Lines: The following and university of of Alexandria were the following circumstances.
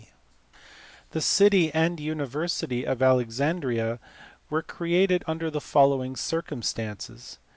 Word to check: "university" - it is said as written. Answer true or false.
true